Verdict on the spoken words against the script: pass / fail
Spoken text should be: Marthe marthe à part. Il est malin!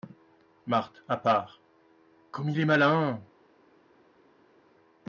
fail